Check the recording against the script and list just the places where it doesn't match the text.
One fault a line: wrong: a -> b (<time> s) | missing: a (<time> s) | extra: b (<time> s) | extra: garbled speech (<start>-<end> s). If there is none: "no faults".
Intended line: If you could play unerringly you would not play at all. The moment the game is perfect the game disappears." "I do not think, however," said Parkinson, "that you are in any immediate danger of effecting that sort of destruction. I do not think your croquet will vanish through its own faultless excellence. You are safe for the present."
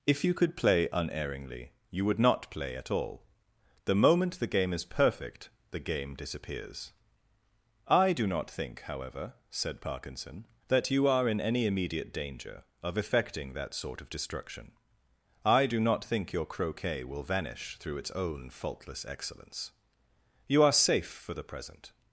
no faults